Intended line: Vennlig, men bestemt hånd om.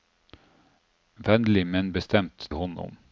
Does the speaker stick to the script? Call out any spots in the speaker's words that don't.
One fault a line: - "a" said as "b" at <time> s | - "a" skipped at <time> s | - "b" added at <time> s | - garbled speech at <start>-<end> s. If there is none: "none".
none